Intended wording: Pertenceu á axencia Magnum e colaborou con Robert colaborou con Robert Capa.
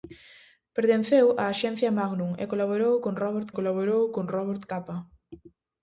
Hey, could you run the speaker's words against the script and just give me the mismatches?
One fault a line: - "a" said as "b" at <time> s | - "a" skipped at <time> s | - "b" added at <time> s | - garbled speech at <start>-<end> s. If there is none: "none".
none